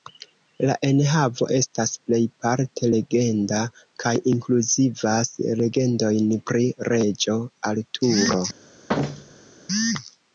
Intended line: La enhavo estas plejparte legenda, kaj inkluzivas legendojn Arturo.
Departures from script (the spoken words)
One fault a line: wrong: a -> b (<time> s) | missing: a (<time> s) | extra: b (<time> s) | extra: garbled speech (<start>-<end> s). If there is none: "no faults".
extra: pri Reĝo (6.5 s)